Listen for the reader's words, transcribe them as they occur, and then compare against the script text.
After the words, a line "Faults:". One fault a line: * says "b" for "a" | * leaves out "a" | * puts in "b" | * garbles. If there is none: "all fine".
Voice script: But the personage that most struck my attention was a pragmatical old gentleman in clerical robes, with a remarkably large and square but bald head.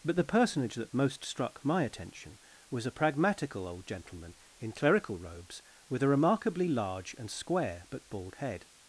But the personage that most struck my attention was a pragmatical old gentleman in clerical robes, with a remarkably large and square but bald head.
Faults:
all fine